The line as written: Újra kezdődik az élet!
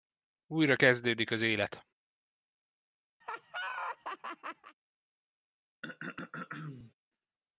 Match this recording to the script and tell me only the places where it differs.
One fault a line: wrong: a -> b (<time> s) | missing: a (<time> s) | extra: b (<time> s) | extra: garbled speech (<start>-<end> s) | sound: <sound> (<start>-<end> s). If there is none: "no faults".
sound: laugh (3.2-4.8 s)
sound: throat clearing (5.8-6.9 s)